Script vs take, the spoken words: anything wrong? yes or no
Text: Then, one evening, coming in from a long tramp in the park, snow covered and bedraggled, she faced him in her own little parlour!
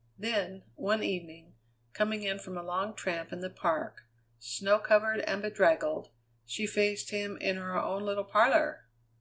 no